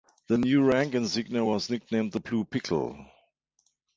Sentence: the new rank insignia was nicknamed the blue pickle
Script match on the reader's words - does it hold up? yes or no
yes